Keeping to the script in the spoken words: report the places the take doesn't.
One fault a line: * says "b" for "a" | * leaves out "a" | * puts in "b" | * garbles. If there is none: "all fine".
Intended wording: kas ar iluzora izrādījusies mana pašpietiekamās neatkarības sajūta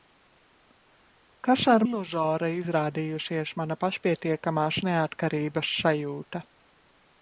all fine